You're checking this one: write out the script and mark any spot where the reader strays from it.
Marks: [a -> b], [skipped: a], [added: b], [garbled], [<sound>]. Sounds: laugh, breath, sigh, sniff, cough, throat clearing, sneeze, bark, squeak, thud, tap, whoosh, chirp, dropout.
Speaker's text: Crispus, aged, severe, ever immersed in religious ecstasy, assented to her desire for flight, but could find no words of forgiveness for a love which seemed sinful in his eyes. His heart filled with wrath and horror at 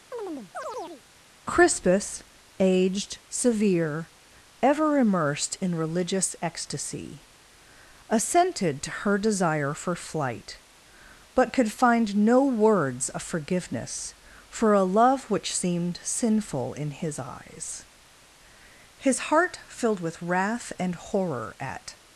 [chirp] Crispus, aged, severe, ever immersed in religious ecstasy, assented to her desire for flight, but could find no words of forgiveness for a love which seemed sinful in his eyes. His heart filled with wrath and horror at